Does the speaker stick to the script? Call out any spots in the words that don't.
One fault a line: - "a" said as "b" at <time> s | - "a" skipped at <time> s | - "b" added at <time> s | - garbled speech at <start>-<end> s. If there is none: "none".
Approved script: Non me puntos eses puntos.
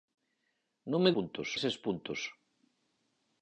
none